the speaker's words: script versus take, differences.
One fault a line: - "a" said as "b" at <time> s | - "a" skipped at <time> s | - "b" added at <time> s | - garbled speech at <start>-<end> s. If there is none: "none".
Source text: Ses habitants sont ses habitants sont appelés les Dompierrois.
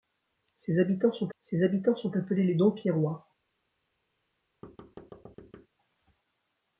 none